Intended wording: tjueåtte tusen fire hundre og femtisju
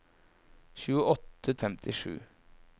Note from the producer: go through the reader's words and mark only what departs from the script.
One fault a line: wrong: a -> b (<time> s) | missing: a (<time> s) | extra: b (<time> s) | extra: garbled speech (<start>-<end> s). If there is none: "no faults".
missing: tusen fire hundre (1.5 s)